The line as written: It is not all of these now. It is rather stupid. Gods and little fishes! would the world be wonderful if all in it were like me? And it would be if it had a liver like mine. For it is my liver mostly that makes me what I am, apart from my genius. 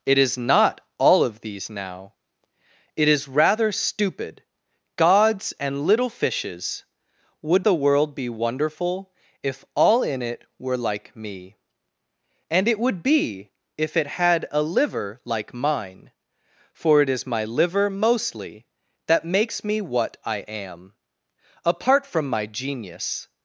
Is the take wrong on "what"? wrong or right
right